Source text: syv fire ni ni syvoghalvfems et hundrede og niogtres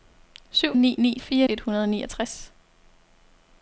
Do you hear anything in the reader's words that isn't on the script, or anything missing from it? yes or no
yes